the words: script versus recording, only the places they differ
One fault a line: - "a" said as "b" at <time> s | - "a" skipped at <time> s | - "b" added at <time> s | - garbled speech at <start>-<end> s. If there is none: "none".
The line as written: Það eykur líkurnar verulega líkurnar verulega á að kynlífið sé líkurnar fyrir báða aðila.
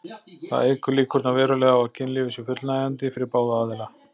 - "líkurnar verulega" skipped at 1.8 s
- "líkurnar" said as "fullnægjandi" at 2.5 s